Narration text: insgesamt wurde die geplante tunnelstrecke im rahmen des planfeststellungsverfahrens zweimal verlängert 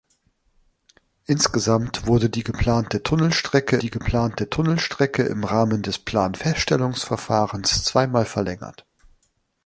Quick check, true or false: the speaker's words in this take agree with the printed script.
false